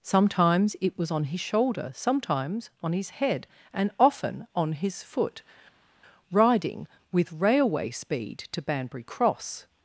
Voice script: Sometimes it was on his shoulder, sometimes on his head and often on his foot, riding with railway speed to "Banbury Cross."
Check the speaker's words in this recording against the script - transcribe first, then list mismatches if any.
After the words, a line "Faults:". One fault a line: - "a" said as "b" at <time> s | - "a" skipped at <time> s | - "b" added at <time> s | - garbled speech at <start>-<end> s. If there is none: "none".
Sometimes it was on his shoulder, sometimes on his head and often on his foot, riding with railway speed to "Banbury Cross."
Faults:
none